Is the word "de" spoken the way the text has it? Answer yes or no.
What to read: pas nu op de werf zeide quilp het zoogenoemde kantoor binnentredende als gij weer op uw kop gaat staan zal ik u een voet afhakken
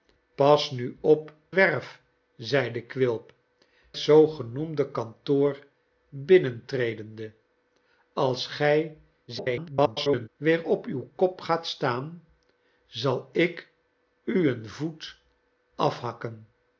no